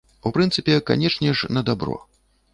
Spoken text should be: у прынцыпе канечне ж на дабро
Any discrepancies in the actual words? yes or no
no